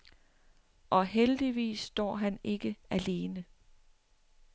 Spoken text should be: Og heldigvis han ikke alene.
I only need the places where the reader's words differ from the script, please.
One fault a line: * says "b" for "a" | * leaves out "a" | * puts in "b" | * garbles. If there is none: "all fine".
* puts in "står"